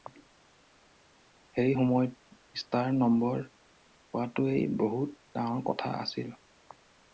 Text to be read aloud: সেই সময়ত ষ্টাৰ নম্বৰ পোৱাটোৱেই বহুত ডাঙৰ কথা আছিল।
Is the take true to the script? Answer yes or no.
yes